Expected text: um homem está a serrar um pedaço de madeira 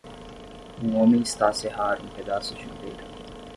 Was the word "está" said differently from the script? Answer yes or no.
no